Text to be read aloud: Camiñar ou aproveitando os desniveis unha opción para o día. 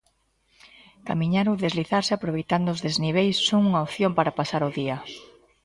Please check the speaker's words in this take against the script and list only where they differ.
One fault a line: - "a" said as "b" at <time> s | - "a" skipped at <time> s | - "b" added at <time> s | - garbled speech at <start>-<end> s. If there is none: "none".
- "deslizarse" added at 1.6 s
- "son" added at 3.5 s
- "pasar" added at 4.4 s